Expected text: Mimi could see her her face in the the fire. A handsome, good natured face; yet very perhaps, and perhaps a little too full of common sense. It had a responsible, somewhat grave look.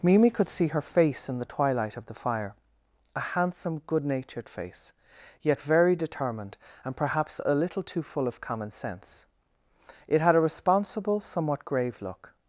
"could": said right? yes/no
yes